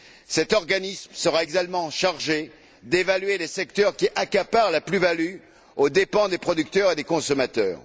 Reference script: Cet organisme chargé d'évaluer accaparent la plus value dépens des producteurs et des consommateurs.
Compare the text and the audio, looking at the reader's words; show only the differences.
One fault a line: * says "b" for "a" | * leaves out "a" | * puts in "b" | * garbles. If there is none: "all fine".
* puts in "sera également"
* puts in "les secteurs qui"
* puts in "aux"